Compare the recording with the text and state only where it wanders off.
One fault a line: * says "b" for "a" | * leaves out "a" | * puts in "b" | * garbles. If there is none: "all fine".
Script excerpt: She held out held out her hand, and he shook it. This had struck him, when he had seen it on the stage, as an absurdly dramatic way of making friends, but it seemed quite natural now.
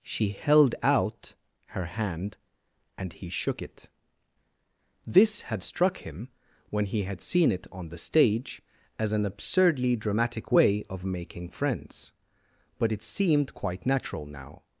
* leaves out "held out"